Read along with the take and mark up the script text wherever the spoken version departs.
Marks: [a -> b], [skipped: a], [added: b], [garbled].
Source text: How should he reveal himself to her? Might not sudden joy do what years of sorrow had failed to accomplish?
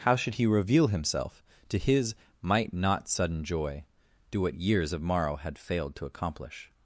How should he reveal himself to [her? -> his] Might not sudden joy do what years of [sorrow -> morrow] had failed to accomplish?